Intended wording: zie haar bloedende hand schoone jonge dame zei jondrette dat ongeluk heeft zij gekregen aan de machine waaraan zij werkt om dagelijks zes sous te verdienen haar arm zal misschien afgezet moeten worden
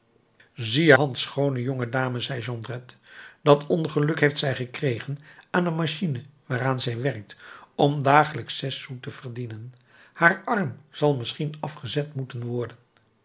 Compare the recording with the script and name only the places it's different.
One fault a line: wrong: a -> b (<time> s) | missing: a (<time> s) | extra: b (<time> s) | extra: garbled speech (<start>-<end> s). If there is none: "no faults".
missing: haar bloedende (0.9 s)